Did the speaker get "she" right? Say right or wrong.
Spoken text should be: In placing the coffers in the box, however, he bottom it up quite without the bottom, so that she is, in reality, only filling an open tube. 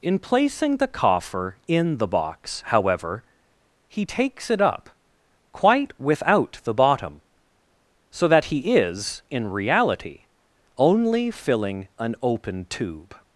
wrong